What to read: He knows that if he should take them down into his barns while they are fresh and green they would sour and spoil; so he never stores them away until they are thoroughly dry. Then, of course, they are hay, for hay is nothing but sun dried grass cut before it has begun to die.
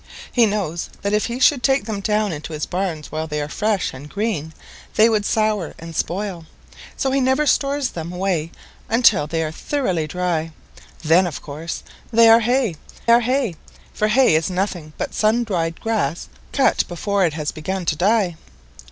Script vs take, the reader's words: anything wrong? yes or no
yes